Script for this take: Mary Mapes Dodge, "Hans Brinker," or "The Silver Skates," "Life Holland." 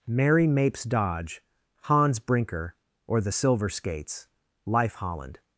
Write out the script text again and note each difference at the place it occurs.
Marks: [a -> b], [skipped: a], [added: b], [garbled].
Mary Mapes Dodge, "Hans Brinker," or "The Silver Skates," "Life Holland."